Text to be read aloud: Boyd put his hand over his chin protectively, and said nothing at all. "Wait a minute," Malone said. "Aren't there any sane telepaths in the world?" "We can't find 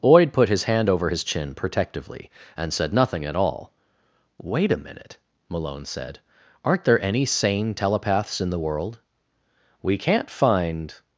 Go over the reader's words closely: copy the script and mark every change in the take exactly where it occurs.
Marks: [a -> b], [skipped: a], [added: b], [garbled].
Boyd put his hand over his chin protectively, and said nothing at all. "Wait a minute," Malone said. "Aren't there any sane telepaths in the world?" "We can't find